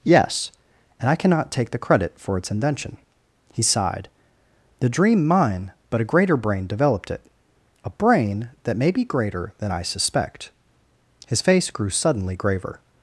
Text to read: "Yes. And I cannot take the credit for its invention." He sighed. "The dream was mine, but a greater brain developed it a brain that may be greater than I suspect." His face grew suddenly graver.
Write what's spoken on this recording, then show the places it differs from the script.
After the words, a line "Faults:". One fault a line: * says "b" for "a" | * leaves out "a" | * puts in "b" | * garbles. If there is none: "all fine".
"Yes. And I cannot take the credit for its invention." He sighed. "The dream mine, but a greater brain developed it a brain that may be greater than I suspect." His face grew suddenly graver.
Faults:
* leaves out "was"